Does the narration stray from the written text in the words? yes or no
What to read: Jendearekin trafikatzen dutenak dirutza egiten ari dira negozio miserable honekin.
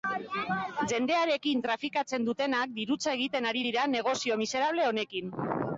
no